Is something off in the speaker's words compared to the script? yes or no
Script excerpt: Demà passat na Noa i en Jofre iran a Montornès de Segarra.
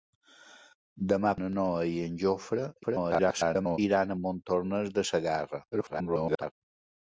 yes